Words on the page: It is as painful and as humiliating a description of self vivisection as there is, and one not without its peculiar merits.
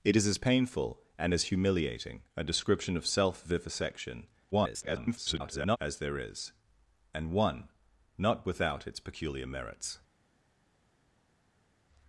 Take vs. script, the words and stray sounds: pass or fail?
fail